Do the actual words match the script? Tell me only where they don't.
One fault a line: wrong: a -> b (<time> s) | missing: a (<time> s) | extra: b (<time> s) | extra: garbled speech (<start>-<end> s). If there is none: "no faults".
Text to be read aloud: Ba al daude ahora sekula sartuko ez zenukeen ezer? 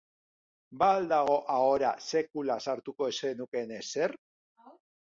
wrong: daude -> dago (1.1 s)